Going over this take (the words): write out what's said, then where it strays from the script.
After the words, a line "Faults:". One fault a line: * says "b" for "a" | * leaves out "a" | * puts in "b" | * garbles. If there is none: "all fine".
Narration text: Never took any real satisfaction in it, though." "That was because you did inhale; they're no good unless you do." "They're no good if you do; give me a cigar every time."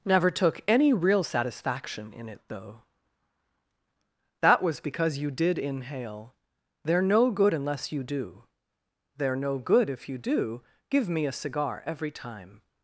Never took any real satisfaction in it, though." "That was because you did inhale; they're no good unless you do." "They're no good if you do; give me a cigar every time."
Faults:
all fine